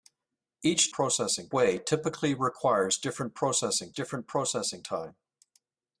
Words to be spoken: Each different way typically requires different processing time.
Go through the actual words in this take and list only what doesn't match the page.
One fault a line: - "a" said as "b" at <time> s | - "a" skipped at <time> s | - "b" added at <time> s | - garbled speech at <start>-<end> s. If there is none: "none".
- "different" said as "processing" at 0.9 s
- "different processing" added at 3.9 s